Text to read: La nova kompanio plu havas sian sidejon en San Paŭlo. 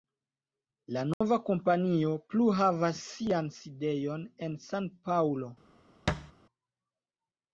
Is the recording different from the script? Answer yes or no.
no